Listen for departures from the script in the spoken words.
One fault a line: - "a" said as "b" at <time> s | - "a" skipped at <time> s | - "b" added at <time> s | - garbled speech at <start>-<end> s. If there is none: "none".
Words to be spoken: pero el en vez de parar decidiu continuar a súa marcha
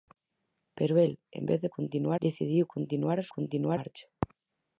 - "parar" said as "continuar" at 1.8 s
- "súa" said as "continuar" at 3.4 s